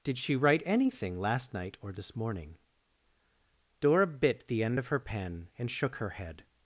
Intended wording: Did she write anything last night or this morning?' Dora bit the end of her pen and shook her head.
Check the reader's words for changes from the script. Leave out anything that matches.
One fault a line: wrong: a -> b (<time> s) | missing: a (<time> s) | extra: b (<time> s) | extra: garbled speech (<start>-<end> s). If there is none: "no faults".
no faults